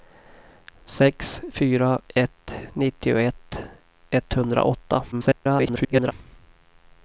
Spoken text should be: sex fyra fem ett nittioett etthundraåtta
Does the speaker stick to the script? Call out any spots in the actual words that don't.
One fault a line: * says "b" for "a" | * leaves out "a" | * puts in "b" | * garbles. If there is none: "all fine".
* leaves out "fem"
* garbles